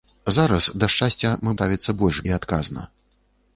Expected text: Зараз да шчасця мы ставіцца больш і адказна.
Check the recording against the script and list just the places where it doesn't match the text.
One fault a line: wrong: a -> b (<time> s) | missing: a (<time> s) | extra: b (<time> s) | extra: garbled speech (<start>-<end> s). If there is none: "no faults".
no faults